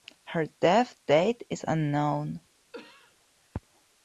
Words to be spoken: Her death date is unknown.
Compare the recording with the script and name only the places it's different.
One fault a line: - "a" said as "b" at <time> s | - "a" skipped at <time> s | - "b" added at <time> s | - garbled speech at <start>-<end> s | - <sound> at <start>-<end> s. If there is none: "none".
- cough at 2.7-3.2 s